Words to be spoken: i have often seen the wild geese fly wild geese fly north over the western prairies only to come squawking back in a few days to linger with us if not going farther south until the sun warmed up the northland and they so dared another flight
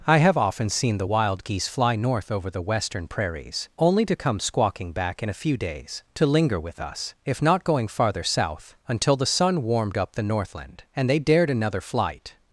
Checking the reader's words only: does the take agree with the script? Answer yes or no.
no